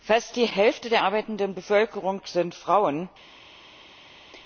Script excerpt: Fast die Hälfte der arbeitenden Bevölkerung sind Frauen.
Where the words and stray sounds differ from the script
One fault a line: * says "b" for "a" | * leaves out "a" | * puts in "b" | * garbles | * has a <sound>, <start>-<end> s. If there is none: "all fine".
all fine